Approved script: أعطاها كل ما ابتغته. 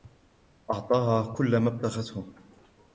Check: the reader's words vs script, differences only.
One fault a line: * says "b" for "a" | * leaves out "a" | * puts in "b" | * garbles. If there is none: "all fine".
all fine